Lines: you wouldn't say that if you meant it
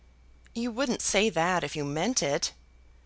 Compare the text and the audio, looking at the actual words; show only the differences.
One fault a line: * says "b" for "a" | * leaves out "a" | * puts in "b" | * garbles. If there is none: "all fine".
all fine